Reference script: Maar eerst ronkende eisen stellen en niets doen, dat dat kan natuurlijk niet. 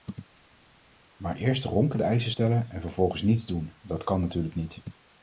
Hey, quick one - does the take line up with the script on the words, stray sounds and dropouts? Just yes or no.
no